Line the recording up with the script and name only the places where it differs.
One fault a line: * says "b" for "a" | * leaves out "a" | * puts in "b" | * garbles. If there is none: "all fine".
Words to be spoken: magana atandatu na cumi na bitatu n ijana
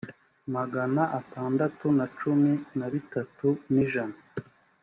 all fine